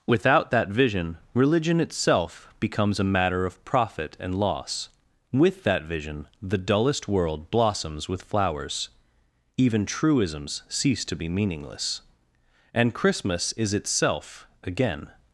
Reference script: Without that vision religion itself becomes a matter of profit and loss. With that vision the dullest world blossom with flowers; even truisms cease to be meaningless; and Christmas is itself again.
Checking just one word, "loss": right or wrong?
right